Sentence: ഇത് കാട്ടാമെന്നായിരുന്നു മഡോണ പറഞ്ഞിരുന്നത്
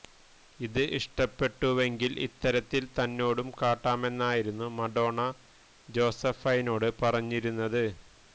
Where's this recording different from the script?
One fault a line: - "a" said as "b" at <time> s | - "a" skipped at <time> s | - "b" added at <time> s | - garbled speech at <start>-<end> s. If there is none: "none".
- "ഇഷ്ടപ്പെട്ടുവെങ്കില് ഇത്തരത്തില് തന്നോടും" added at 1.0 s
- "ജോസഫൈനോട്" added at 5.9 s